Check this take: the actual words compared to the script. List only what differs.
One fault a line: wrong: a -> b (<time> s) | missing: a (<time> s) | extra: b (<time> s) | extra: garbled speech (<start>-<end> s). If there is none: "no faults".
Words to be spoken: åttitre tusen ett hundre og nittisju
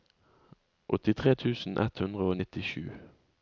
no faults